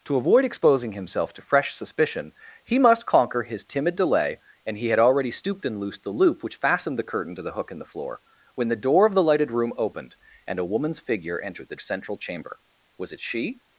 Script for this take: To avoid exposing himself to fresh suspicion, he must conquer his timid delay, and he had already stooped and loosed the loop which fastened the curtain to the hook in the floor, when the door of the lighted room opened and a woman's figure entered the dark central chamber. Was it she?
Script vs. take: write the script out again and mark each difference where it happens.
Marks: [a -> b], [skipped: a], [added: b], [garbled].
To avoid exposing himself to fresh suspicion, he must conquer his timid delay, and he had already stooped and loosed the loop which fastened the curtain to the hook in the floor, when the door of the lighted room opened and a woman's figure entered the [skipped: dark] central chamber. Was it she?